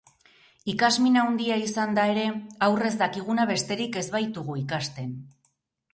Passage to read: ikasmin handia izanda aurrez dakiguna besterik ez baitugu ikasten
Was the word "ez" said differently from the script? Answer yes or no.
no